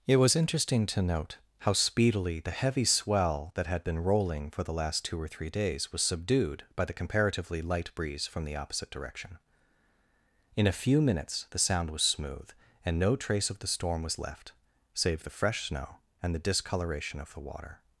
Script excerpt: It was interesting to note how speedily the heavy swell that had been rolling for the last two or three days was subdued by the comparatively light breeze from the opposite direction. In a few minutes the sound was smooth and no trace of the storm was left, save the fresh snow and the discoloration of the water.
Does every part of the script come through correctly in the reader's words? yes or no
yes